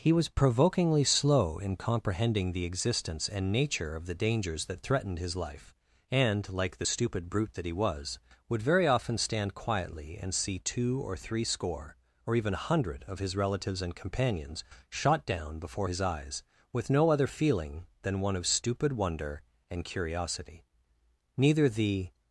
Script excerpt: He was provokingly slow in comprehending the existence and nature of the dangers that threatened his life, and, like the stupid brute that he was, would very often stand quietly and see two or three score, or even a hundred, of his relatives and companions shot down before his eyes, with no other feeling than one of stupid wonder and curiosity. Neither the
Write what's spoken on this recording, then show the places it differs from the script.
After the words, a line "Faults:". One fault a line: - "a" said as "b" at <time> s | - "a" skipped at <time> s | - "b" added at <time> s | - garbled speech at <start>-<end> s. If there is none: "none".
He was provokingly slow in comprehending the existence and nature of the dangers that threatened his life, and, like the stupid brute that he was, would very often stand quietly and see two or three score, or even a hundred, of his relatives and companions shot down before his eyes, with no other feeling than one of stupid wonder and curiosity. Neither the
Faults:
none